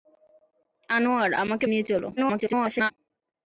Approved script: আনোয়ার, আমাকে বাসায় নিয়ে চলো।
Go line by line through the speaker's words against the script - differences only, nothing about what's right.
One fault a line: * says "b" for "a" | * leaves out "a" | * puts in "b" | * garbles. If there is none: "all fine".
* leaves out "বাসায়"
* garbles